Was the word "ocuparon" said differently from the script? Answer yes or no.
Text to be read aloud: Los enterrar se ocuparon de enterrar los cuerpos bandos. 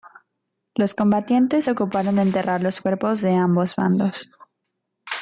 no